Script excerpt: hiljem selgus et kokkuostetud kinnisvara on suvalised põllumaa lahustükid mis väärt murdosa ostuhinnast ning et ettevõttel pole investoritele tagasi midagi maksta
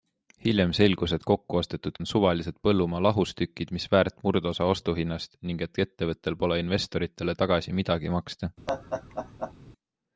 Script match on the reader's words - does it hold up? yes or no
no